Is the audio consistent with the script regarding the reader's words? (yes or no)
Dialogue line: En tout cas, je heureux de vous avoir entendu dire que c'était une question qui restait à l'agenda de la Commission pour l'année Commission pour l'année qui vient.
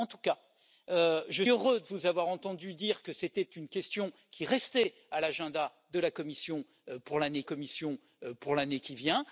yes